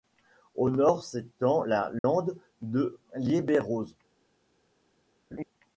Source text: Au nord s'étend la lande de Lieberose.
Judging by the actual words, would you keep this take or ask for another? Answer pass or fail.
pass